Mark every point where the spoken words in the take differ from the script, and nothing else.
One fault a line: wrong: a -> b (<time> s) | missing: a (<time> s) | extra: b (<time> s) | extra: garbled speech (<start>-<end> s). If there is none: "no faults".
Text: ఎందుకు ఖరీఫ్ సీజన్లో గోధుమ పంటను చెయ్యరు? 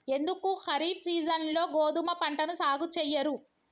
extra: సాగు (2.5 s)